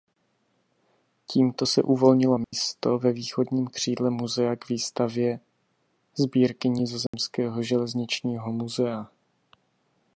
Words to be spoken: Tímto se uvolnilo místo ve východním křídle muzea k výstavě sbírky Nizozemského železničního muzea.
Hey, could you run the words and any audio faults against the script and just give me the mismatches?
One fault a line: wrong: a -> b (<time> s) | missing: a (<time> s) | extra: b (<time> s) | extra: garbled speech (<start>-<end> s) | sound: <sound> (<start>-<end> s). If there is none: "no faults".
sound: dropout (2.4-2.5 s)
sound: dropout (7.1-7.1 s)